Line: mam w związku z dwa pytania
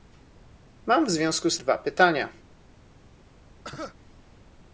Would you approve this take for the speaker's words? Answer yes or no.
yes